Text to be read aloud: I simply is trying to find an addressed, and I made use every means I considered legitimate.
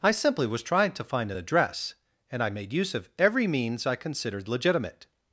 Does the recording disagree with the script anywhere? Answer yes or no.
yes